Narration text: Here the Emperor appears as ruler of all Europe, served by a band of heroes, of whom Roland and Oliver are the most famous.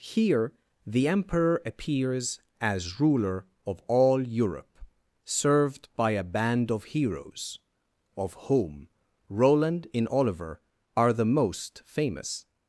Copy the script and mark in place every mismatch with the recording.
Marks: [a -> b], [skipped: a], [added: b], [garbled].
Here the Emperor appears as ruler of all Europe, served by a band of heroes, of whom Roland [and -> in] Oliver are the most famous.